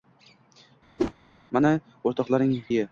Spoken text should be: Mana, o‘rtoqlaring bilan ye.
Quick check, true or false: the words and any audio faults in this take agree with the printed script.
false